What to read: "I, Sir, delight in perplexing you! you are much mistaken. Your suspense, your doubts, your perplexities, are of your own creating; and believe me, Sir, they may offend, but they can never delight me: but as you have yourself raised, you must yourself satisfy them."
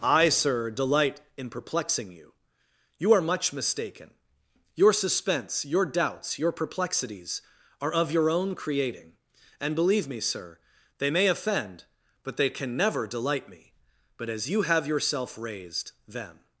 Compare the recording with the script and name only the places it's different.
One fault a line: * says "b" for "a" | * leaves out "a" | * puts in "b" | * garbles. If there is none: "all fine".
* leaves out "you must yourself satisfy"